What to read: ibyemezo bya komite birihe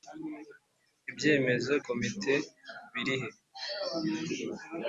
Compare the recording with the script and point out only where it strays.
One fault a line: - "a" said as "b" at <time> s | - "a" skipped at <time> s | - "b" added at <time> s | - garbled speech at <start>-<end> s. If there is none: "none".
- "bya" skipped at 1.7 s